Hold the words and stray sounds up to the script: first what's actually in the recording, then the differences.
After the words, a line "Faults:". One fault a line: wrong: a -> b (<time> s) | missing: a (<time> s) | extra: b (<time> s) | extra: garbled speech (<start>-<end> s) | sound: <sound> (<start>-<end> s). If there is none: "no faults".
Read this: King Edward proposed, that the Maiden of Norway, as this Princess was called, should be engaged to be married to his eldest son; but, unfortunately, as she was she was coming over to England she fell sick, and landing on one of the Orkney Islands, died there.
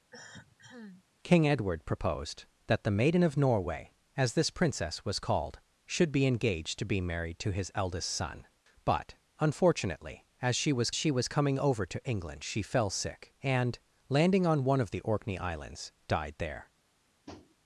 King Edward proposed, that the Maiden of Norway, as this Princess was called, should be engaged to be married to his eldest son; but, unfortunately, as she was she was coming over to England she fell sick, and landing on one of the Orkney Islands, died there.
Faults:
sound: cough (0.1-1.0 s)
sound: tap (17.3-17.6 s)